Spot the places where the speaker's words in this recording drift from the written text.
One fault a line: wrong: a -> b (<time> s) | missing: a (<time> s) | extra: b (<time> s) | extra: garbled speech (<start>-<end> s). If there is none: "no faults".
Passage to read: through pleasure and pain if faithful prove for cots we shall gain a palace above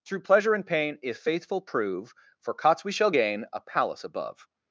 no faults